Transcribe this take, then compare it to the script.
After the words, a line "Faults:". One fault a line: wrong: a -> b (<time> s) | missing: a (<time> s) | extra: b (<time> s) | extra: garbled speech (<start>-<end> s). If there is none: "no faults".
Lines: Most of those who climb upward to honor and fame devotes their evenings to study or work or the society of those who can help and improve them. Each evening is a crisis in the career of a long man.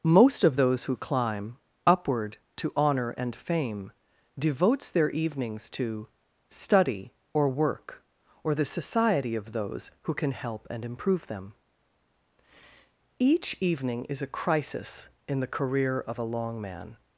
Most of those who climb upward to honor and fame devotes their evenings to study or work or the society of those who can help and improve them. Each evening is a crisis in the career of a long man.
Faults:
no faults